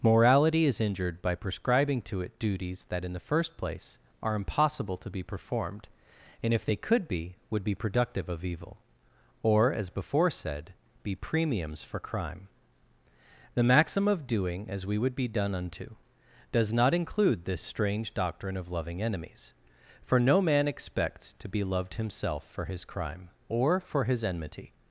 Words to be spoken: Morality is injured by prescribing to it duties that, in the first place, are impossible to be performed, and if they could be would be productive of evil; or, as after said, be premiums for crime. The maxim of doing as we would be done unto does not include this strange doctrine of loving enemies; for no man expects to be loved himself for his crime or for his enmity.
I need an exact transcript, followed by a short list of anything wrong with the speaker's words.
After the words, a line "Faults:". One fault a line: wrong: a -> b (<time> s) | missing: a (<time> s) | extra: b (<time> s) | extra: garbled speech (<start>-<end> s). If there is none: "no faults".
Morality is injured by prescribing to it duties that, in the first place, are impossible to be performed, and if they could be would be productive of evil; or, as before said, be premiums for crime. The maxim of doing as we would be done unto does not include this strange doctrine of loving enemies; for no man expects to be loved himself for his crime or for his enmity.
Faults:
wrong: after -> before (9.9 s)